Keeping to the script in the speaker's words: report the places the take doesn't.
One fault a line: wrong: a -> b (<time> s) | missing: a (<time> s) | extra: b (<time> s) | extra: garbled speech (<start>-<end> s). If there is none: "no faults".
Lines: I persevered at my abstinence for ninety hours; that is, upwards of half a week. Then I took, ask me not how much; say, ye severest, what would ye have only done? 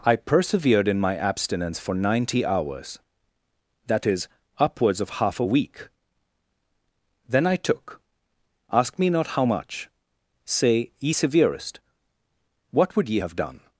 wrong: at -> in (0.9 s)
missing: only (13.4 s)